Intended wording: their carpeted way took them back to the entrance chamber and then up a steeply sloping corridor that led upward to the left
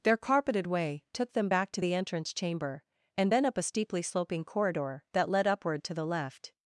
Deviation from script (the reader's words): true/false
false